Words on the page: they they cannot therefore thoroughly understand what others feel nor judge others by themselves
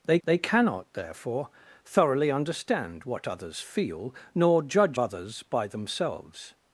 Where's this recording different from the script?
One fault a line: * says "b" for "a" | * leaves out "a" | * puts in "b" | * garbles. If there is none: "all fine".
all fine